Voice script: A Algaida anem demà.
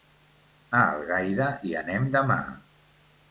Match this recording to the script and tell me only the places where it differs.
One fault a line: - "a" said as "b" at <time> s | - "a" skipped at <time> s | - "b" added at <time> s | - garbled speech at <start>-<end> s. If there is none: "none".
- "hi" added at 1.7 s